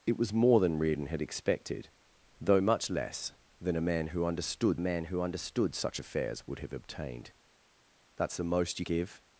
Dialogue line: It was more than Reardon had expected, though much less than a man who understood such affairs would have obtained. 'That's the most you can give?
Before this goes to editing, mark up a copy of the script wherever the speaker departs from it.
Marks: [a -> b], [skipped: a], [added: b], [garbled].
It was more than Reardon had expected, though much less than a man who understood [added: man who understood] such affairs would have obtained. 'That's the most you [skipped: can] give?